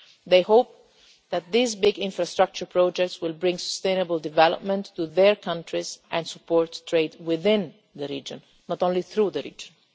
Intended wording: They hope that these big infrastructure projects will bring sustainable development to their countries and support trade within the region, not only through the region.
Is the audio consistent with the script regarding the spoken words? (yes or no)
yes